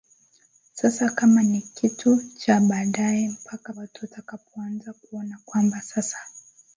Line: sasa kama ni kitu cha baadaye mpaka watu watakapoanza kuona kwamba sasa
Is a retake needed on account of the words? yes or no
no